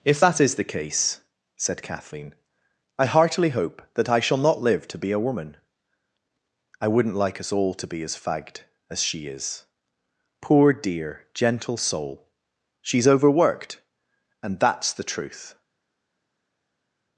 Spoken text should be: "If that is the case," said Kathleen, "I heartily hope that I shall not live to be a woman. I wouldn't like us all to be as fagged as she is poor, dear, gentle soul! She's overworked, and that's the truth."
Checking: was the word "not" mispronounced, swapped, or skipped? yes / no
no